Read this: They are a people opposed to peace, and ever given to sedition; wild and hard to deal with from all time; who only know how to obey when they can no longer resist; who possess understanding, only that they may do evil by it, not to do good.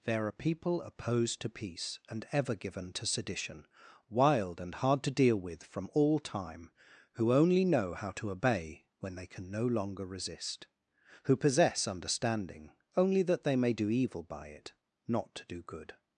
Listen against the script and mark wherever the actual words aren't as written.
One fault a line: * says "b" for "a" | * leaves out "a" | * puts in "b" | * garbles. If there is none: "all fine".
* says "There" for "They"
* leaves out "a"